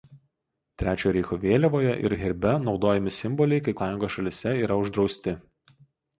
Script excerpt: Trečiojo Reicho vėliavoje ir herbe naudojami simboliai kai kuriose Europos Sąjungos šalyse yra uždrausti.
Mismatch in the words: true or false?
true